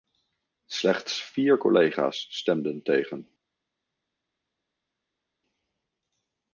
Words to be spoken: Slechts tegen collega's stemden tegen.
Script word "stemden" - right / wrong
right